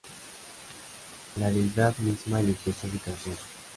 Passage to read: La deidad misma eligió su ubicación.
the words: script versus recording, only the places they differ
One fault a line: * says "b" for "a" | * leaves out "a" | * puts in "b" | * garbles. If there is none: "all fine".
all fine